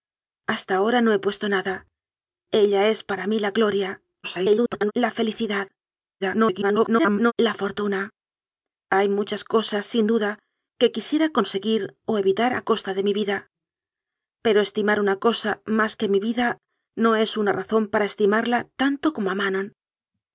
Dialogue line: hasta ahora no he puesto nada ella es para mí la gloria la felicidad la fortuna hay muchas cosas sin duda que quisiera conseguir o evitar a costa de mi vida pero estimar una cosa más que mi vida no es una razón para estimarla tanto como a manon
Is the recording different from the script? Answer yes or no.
yes